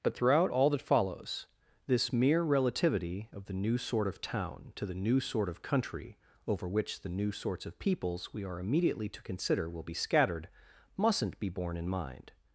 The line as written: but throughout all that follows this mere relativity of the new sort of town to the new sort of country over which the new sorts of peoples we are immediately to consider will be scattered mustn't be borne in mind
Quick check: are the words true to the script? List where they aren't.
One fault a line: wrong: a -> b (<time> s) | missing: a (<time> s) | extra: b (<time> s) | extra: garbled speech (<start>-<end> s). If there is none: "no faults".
no faults